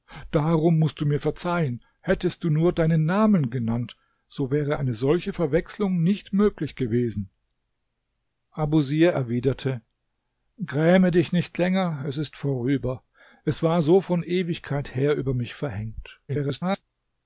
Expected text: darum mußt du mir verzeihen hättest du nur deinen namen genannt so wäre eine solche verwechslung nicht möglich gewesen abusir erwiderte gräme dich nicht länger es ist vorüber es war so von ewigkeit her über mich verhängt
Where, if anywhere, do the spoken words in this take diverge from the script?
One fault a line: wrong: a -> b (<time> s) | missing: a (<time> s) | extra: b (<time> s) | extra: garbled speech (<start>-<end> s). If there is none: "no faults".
extra: garbled speech (16.3-16.8 s)